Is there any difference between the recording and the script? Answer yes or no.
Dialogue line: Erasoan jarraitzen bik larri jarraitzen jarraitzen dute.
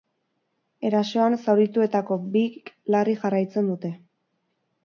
yes